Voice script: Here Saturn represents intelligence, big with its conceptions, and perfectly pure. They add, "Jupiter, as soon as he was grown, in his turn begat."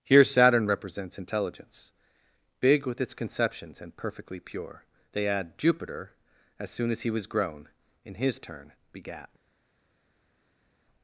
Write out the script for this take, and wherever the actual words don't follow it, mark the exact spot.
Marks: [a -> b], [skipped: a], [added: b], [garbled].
Here Saturn represents intelligence, big with its conceptions, and perfectly pure. They add, "Jupiter, as soon as he was grown, in his turn begat."